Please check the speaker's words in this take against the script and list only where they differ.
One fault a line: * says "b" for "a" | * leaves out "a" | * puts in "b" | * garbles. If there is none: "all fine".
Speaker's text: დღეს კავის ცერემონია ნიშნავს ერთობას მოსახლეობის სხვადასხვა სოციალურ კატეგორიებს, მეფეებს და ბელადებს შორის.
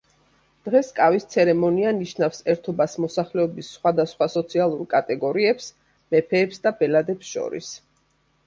all fine